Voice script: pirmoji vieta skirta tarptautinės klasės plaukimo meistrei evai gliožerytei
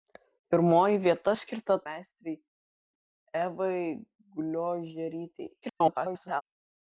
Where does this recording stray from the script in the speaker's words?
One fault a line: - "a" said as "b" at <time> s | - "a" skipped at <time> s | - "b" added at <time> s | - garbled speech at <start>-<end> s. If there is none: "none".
- "tarptautinės klasės plaukimo" skipped at 1.8 s
- garbled speech at 5.6-6.4 s